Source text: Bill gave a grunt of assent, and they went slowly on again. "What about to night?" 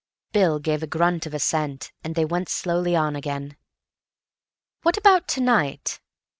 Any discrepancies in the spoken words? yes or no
no